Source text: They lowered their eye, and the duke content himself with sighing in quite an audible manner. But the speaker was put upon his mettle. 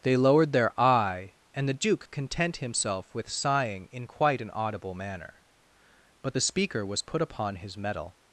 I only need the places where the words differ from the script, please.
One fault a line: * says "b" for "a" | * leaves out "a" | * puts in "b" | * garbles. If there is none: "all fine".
all fine